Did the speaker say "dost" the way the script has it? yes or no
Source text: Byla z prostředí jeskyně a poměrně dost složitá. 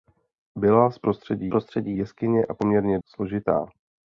no